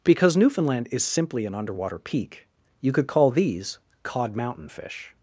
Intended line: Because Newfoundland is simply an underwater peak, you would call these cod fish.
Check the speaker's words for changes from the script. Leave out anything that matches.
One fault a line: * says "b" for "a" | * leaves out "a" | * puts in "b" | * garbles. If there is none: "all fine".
* says "could" for "would"
* puts in "mountain"